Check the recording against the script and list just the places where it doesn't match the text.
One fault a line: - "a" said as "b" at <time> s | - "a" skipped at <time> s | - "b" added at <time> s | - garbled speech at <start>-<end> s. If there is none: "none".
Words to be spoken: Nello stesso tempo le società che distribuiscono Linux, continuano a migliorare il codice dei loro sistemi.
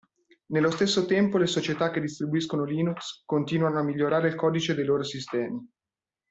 none